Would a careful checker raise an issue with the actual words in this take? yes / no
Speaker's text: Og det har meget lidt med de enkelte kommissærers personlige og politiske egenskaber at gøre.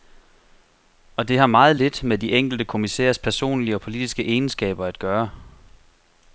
no